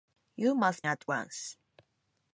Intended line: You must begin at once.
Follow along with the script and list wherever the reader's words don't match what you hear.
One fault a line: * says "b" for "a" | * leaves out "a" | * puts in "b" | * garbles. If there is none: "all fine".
* leaves out "begin"